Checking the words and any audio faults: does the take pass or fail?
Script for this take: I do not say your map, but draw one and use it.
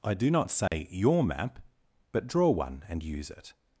fail